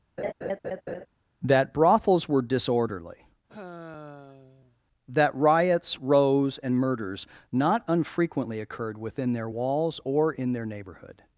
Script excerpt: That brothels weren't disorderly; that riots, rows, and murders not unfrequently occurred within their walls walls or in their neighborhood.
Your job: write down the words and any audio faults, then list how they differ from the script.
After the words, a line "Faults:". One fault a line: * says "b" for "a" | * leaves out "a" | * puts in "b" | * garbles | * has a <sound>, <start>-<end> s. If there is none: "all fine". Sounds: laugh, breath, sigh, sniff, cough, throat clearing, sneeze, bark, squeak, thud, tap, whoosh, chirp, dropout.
That brothels were disorderly; that riots, rows, and murders not unfrequently occurred within their walls or in their neighborhood.
Faults:
* has a laugh, 0.2-1.1 s
* says "were" for "weren't"
* has a sigh, 3.5-4.8 s
* leaves out "walls"